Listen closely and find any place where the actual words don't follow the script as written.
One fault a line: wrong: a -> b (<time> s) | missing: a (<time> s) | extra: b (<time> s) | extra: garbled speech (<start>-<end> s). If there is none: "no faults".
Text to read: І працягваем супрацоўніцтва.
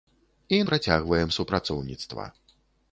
no faults